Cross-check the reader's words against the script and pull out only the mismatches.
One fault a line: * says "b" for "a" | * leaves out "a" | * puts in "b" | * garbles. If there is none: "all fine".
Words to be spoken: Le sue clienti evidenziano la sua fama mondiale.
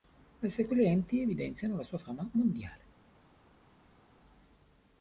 all fine